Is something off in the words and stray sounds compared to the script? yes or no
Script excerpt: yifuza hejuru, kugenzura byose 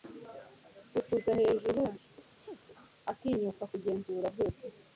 yes